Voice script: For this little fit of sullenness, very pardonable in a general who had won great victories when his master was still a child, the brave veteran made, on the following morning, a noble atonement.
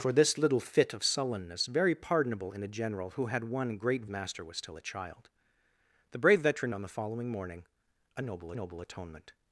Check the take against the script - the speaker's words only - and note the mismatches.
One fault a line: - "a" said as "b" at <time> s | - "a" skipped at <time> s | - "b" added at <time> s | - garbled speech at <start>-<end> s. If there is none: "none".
- "victories when his" skipped at 4.1 s
- "made" skipped at 6.7 s
- "noble" added at 8.5 s